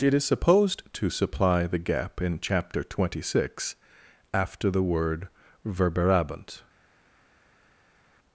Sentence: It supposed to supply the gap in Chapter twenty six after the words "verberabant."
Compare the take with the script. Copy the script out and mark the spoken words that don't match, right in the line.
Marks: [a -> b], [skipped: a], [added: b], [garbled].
It [added: is] supposed to supply the gap in Chapter twenty six after the [words -> word] "verberabant."